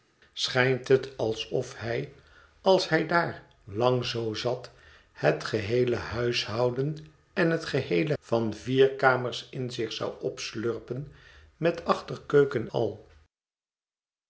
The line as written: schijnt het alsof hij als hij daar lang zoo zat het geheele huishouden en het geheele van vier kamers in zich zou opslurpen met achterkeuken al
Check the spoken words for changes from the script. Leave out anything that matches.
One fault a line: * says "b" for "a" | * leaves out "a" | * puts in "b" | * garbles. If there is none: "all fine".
all fine